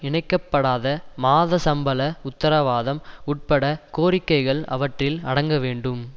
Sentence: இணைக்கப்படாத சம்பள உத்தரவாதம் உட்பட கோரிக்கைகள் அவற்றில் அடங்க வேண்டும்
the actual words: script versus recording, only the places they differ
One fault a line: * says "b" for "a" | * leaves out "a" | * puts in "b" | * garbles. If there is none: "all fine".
* puts in "மாத"